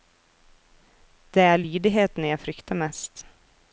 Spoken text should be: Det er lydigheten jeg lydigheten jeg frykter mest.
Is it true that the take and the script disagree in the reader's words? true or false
true